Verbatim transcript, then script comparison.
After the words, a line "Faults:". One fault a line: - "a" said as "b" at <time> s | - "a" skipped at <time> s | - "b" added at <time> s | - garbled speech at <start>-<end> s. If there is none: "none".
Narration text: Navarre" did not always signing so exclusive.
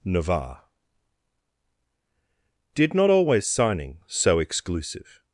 Navarre" did not always signing so exclusive.
Faults:
none